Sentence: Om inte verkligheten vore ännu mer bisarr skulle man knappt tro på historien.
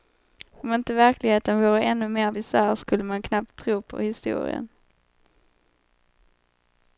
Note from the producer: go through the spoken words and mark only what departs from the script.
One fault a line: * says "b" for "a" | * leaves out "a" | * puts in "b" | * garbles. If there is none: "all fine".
all fine